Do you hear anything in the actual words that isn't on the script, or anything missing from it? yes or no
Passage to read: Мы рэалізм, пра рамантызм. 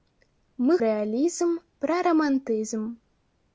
no